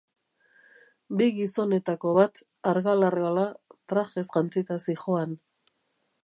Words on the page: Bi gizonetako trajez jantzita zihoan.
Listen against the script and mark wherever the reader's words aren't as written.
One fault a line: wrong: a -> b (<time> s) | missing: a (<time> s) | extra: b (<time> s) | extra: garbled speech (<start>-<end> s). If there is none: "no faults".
extra: bat argal argala (2.2 s)